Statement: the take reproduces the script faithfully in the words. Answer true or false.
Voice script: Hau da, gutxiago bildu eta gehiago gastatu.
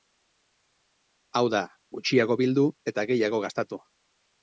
true